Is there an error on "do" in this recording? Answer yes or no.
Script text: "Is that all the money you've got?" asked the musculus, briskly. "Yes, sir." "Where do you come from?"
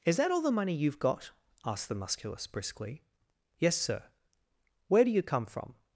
no